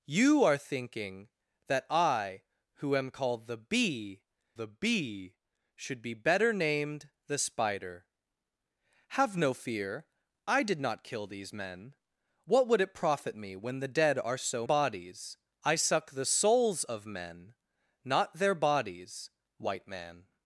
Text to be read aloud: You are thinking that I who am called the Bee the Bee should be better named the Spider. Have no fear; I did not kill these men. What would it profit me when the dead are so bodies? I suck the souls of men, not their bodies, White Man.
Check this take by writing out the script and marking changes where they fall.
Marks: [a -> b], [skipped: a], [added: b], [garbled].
You are thinking that I who am called the Bee the Bee should be better named the Spider. Have no fear; I did not kill these men. What would it profit me when the dead are so bodies? I suck the souls of men, not their bodies, White Man.